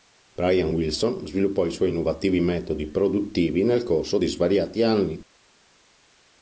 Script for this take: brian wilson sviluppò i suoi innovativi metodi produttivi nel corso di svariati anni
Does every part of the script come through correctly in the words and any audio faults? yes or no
yes